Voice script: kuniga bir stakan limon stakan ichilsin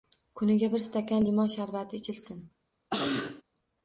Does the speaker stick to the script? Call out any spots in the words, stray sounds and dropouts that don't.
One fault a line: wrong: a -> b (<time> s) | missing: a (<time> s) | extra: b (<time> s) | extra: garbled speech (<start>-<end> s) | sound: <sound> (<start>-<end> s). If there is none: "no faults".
wrong: stakan -> sharbati (1.6 s)
sound: cough (2.9-3.4 s)